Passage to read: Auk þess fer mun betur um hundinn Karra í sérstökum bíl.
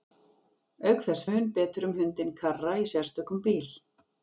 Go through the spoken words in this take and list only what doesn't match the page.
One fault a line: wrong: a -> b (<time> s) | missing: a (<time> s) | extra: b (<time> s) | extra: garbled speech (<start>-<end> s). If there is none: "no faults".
missing: fer (1.2 s)